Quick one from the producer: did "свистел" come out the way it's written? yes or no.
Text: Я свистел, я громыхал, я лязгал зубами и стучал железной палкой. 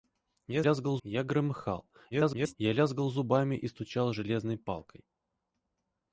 no